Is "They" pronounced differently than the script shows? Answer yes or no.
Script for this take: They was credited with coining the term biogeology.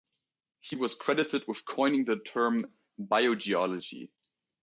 yes